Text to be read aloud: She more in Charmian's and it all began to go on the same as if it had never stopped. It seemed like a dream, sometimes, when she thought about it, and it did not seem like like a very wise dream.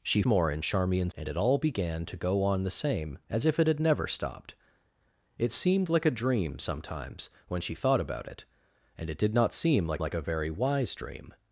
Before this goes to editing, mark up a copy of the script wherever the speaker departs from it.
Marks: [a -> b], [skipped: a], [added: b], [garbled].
She more in Charmian's and it all began to go on the same as if it had never stopped. It seemed like a dream, sometimes, when she thought about it, and it did not seem like like a very wise dream.